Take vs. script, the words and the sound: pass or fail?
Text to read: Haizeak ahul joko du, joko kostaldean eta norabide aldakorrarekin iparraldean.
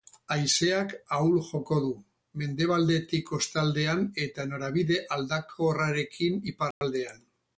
fail